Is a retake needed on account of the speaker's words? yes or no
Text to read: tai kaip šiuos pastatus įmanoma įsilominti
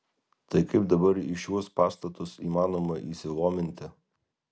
yes